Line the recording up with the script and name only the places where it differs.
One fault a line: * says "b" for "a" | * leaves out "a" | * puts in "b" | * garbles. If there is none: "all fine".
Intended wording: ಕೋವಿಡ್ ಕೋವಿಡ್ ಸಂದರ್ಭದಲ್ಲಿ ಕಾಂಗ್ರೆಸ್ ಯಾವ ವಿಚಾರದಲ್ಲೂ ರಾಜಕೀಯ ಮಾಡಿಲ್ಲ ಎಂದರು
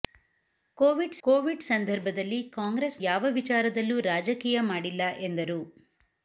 all fine